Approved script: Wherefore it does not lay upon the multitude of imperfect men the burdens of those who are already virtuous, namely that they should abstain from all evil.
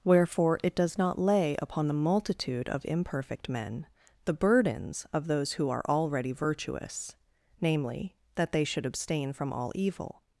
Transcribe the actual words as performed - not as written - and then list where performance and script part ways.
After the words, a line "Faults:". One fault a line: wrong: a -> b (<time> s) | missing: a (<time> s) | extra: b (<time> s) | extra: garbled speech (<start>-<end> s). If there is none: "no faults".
Wherefore it does not lay upon the multitude of imperfect men the burdens of those who are already virtuous, namely that they should abstain from all evil.
Faults:
no faults